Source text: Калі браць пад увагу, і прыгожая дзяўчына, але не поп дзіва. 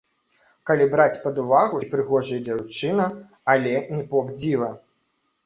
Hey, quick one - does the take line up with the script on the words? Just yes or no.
yes